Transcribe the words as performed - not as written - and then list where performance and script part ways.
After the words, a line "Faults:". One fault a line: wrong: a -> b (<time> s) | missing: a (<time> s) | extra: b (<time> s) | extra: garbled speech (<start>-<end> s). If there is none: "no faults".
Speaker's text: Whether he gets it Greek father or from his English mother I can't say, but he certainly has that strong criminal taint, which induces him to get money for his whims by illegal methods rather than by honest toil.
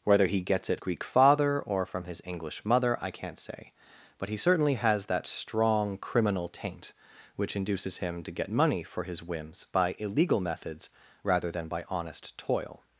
Whether he gets it Greek father or from his English mother I can't say, but he certainly has that strong criminal taint, which induces him to get money for his whims by illegal methods rather than by honest toil.
Faults:
no faults